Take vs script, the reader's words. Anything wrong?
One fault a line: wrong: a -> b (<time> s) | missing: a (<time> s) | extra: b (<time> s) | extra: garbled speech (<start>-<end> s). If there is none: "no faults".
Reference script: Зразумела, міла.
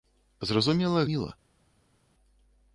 no faults